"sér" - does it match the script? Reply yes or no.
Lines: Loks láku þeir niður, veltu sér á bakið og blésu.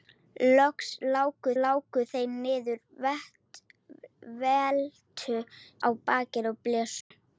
no